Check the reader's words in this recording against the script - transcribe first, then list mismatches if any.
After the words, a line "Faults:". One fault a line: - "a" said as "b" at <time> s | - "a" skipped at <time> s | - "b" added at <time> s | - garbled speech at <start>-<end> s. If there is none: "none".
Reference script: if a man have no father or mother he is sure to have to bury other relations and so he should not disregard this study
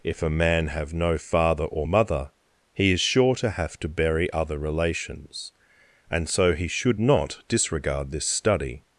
if a man have no father or mother he is sure to have to bury other relations and so he should not disregard this study
Faults:
none